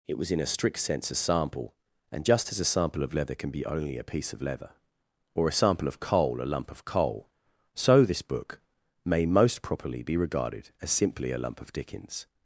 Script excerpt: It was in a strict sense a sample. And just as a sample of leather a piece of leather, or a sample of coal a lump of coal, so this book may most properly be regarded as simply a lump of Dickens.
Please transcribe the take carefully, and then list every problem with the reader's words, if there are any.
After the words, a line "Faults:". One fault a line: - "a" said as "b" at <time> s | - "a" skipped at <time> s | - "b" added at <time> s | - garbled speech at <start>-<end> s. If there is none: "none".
It was in a strict sense a sample. And just as a sample of leather can be only a piece of leather, or a sample of coal a lump of coal, so this book may most properly be regarded as simply a lump of Dickens.
Faults:
- "can be only" added at 3.4 s